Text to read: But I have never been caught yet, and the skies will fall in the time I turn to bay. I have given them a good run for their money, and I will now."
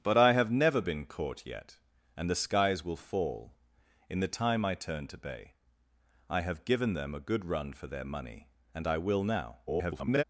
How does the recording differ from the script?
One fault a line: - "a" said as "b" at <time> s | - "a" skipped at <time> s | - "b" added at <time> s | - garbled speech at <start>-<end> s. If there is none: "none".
- garbled speech at 9.7-10.2 s